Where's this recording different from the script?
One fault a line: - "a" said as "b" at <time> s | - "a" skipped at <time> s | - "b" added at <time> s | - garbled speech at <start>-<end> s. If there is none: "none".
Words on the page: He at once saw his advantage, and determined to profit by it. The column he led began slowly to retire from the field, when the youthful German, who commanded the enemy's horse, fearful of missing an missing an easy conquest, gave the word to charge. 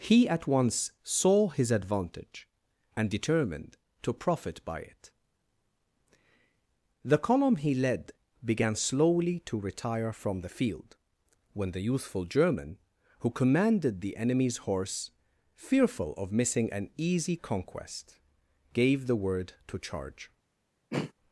- "missing an" skipped at 16.9 s